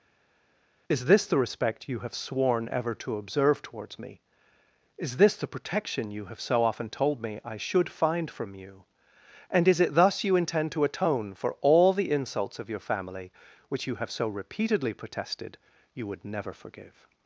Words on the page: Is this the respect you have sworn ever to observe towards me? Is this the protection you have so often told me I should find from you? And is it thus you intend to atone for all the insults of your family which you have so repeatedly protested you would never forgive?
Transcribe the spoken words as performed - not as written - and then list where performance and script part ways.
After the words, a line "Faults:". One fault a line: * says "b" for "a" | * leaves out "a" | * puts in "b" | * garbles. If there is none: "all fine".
Is this the respect you have sworn ever to observe towards me? Is this the protection you have so often told me I should find from you? And is it thus you intend to atone for all the insults of your family which you have so repeatedly protested you would never forgive?
Faults:
all fine